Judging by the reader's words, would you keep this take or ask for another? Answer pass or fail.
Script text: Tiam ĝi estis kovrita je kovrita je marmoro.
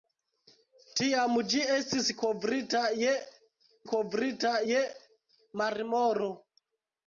pass